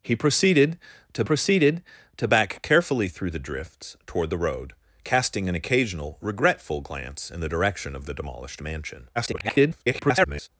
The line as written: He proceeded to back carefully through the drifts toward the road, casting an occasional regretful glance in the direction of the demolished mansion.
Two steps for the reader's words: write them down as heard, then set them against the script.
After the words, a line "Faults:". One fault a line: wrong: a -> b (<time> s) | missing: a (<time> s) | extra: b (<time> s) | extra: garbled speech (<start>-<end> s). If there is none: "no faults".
He proceeded to proceeded to back carefully through the drifts toward the road, casting an occasional regretful glance in the direction of the demolished mansion. [garbled]
Faults:
extra: proceeded to (1.2 s)
extra: garbled speech (9.2-10.5 s)